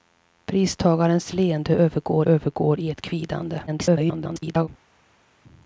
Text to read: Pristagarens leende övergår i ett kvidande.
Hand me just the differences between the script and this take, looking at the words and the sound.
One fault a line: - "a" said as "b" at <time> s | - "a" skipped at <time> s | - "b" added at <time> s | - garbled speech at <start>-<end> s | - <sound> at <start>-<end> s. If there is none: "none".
- "övergår" added at 2.2 s
- garbled speech at 3.7-4.7 s